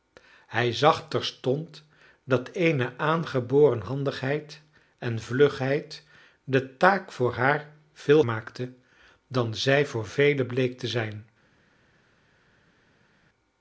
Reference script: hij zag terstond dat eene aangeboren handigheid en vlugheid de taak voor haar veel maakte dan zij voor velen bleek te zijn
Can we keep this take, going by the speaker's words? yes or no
yes